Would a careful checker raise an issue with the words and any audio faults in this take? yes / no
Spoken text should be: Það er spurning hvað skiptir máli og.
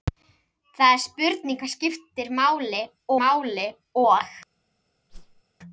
yes